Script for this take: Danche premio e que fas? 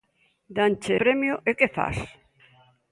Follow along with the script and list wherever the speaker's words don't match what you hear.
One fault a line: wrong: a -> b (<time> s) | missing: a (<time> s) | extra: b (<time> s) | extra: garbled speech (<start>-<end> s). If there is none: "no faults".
no faults